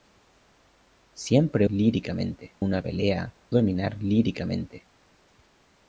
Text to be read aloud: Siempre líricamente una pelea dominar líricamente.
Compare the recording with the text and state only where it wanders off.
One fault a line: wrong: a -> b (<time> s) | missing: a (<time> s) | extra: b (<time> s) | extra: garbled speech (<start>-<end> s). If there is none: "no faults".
no faults